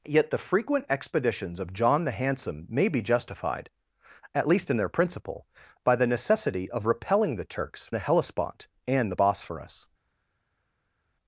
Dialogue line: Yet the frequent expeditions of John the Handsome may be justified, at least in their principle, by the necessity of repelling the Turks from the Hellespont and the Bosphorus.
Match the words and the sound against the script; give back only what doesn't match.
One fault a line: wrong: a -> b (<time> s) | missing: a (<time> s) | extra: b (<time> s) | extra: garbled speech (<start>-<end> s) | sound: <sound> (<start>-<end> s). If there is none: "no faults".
missing: from (7.9 s)